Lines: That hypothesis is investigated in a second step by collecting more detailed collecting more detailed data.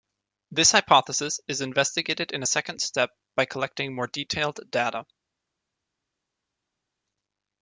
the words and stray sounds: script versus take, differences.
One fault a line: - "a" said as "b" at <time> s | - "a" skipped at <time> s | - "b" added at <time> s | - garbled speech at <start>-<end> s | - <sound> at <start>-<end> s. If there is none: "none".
- "That" said as "This" at 0.5 s
- "collecting more detailed" skipped at 4.6 s